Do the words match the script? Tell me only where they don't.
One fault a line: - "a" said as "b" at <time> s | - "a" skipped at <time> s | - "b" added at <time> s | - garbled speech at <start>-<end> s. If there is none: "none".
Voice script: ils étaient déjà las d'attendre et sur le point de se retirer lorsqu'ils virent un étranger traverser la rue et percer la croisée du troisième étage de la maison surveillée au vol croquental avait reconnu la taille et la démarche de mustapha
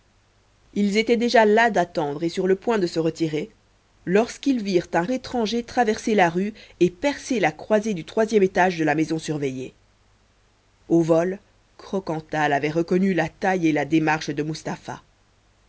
none